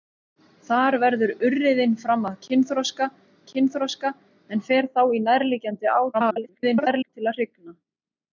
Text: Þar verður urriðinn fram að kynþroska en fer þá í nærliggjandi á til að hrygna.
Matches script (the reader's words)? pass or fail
fail